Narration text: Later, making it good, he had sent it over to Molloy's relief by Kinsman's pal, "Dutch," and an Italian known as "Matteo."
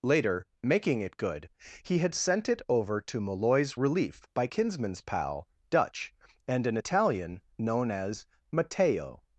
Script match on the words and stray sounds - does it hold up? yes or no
yes